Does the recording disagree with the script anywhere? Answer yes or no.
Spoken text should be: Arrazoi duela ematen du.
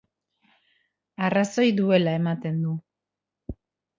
no